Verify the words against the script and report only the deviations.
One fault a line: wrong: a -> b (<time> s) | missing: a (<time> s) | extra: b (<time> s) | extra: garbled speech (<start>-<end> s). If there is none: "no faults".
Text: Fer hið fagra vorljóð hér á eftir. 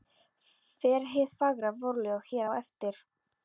no faults